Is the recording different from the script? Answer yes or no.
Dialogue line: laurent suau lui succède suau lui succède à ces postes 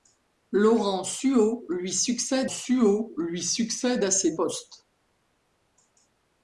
no